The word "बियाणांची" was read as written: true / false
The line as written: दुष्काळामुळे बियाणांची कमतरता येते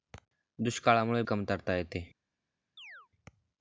false